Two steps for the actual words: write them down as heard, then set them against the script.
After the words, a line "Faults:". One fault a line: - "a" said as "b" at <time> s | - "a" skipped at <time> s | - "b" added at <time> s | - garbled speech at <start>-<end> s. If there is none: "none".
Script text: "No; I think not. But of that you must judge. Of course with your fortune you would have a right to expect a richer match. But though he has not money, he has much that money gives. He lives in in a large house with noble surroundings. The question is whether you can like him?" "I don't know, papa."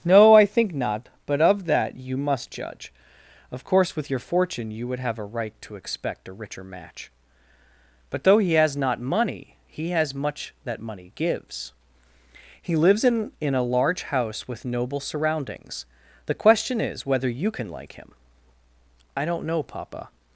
"No; I think not. But of that you must judge. Of course with your fortune you would have a right to expect a richer match. But though he has not money, he has much that money gives. He lives in in a large house with noble surroundings. The question is whether you can like him?" "I don't know, papa."
Faults:
none